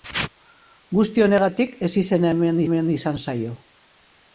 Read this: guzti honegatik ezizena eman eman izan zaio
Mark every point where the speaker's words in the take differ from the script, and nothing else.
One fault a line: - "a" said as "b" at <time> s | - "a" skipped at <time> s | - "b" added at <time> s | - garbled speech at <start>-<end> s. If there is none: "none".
none